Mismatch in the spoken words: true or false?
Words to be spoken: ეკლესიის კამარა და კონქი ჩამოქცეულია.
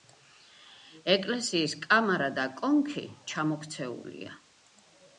false